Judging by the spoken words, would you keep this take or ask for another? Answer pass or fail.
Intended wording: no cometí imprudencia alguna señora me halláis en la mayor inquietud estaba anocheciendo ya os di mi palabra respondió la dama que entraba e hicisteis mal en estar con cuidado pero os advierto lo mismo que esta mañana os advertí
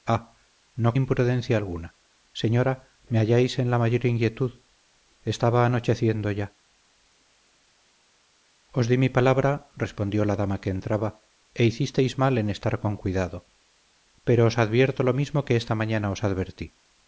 fail